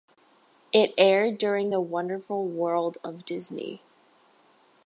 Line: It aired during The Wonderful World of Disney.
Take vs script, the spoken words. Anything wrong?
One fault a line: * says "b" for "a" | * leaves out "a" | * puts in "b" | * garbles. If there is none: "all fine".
all fine